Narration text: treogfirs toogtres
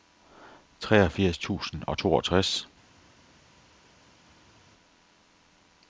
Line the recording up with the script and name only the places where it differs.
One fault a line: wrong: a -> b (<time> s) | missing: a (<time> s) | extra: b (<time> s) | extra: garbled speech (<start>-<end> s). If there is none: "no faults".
extra: tusind og (1.4 s)